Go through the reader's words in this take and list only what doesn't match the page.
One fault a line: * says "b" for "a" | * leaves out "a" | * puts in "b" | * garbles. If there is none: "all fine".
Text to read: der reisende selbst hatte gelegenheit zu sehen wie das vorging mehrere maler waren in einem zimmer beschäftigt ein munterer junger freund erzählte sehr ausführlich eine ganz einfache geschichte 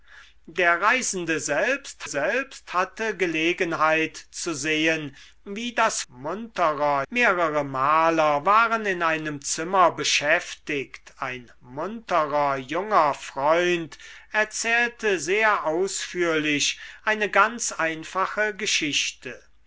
* puts in "selbst"
* says "munterer" for "vorging"